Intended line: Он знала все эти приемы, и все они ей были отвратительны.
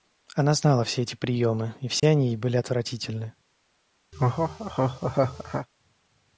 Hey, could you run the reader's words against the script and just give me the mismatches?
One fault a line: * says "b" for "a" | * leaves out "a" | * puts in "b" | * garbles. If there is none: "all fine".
* says "Она" for "Он"